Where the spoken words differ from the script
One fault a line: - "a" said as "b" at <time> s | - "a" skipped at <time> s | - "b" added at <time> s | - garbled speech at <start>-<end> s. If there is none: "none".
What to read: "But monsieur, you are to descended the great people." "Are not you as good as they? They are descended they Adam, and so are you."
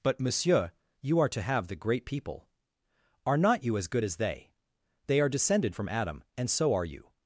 - "descended" said as "have" at 1.4 s
- "they" said as "from" at 5.7 s